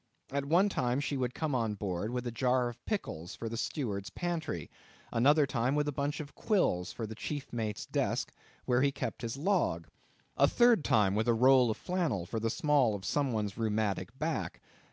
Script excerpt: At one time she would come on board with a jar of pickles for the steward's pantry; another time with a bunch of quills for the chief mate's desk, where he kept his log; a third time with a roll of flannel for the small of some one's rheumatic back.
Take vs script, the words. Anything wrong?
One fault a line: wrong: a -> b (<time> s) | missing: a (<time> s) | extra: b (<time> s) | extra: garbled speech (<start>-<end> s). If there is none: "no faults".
no faults